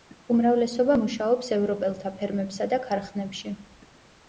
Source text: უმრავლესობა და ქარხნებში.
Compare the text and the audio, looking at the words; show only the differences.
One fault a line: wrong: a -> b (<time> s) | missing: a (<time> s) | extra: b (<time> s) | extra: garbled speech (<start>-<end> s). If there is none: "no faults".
extra: მუშაობს ევროპელთა ფერმებსა (1.0 s)